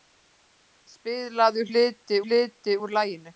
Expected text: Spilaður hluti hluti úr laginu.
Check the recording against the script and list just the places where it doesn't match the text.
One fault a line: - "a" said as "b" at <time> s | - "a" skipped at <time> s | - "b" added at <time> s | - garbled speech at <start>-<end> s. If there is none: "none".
none